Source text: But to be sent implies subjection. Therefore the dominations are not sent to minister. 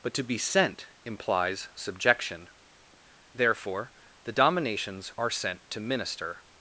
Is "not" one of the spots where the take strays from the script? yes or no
yes